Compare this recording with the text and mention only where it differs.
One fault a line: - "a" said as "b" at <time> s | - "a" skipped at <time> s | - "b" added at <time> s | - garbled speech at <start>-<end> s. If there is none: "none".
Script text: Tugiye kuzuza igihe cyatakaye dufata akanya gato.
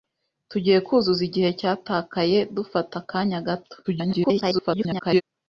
- garbled speech at 3.8-5.2 s